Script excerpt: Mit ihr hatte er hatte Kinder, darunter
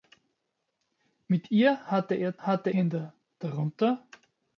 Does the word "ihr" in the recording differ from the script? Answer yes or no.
no